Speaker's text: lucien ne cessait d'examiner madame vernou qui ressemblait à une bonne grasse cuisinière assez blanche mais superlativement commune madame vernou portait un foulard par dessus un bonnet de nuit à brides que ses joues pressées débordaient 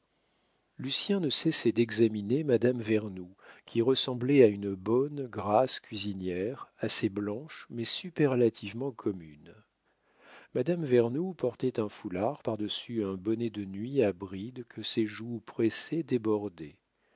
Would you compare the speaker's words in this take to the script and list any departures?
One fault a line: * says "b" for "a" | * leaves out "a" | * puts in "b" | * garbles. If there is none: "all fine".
all fine